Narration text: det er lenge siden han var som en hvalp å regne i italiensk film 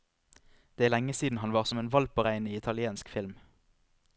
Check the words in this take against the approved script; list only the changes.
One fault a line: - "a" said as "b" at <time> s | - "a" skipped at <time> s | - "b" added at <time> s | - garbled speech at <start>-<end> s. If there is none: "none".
none